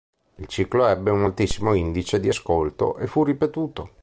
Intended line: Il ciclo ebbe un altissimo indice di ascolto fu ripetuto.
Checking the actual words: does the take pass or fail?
fail